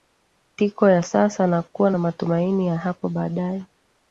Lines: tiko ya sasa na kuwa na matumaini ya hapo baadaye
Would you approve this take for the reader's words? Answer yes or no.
yes